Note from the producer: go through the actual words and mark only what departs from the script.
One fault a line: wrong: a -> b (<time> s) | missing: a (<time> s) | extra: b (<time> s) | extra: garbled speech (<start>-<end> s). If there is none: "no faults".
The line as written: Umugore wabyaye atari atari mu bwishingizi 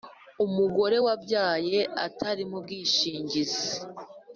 missing: atari (2.4 s)